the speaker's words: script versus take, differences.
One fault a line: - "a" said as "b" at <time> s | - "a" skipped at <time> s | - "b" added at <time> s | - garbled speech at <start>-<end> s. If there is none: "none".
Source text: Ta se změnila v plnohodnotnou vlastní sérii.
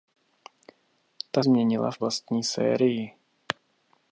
- "se" skipped at 1.4 s
- "plnohodnotnou" skipped at 2.0 s